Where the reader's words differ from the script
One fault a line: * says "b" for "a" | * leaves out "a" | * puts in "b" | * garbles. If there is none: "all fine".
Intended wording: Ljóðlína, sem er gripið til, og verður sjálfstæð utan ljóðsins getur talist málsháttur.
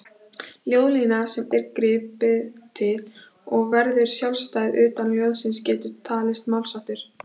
all fine